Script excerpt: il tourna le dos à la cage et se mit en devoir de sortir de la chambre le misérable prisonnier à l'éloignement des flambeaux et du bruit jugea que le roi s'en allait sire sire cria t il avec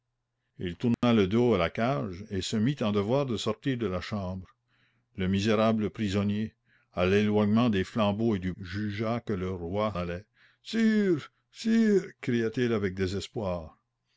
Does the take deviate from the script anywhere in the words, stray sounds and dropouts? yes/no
yes